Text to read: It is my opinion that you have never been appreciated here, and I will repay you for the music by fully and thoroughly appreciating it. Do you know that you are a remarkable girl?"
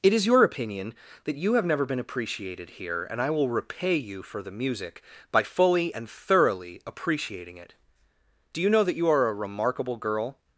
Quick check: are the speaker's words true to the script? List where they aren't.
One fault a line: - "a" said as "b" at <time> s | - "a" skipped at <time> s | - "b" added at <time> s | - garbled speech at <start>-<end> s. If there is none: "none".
- "my" said as "your" at 0.2 s